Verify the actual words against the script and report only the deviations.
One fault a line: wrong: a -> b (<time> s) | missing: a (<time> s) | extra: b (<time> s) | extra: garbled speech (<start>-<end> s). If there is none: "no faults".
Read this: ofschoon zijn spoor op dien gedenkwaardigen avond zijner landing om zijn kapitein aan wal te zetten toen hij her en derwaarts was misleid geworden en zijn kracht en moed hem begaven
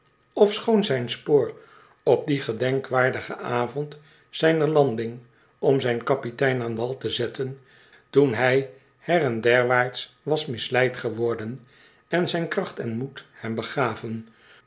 no faults